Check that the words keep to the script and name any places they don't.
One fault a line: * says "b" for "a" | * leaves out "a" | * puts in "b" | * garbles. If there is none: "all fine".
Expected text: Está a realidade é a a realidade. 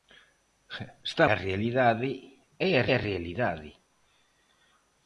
all fine